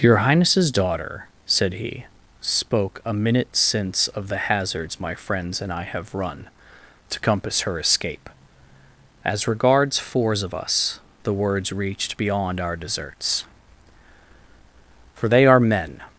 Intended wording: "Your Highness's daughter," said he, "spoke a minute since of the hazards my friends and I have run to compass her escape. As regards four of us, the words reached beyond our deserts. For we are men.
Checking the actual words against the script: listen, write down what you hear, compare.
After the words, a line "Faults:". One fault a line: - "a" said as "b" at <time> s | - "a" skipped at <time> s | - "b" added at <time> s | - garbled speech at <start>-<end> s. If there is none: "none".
"Your Highness's daughter," said he, "spoke a minute since of the hazards my friends and I have run to compass her escape. As regards fours of us, the words reached beyond our deserts. For they are men.
Faults:
- "four" said as "fours" at 10.0 s
- "we" said as "they" at 15.3 s